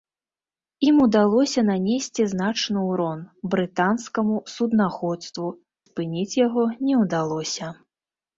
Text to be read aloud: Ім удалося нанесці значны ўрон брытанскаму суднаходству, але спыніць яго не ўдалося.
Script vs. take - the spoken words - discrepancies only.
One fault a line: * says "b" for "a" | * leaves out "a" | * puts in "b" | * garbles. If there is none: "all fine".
* leaves out "але"